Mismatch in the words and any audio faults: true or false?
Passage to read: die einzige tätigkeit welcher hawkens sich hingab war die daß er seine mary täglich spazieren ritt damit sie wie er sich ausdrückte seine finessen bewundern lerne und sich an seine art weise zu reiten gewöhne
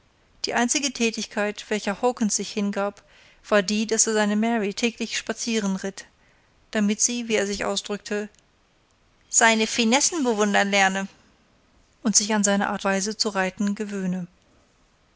false